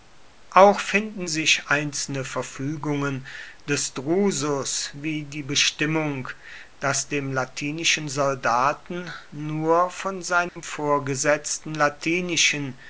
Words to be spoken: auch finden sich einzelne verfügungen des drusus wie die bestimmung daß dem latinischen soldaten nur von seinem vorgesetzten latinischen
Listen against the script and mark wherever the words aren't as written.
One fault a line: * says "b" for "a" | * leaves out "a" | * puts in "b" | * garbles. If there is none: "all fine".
all fine